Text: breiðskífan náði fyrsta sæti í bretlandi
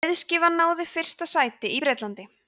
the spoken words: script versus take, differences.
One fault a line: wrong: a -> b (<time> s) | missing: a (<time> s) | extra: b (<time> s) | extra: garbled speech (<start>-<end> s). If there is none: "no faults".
no faults